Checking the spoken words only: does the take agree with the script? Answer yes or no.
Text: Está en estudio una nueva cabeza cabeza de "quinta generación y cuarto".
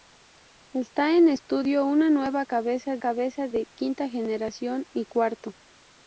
yes